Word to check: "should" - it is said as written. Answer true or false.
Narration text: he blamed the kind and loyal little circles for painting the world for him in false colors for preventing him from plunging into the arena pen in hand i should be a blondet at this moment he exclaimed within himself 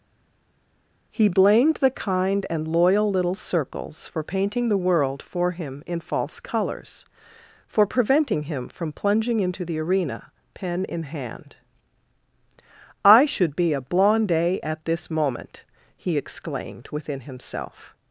true